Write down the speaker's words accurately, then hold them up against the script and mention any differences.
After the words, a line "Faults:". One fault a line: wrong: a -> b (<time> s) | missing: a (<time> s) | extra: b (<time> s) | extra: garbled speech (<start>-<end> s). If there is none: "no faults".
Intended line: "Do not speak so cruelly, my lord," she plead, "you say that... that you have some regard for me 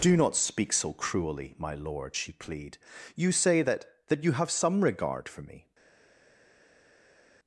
"Do not speak so cruelly, my lord," she plead, "you say that... that you have some regard for me
Faults:
no faults